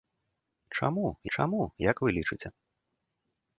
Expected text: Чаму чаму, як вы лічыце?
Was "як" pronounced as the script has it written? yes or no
yes